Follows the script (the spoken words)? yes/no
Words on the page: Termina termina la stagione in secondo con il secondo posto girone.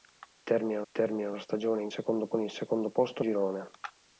yes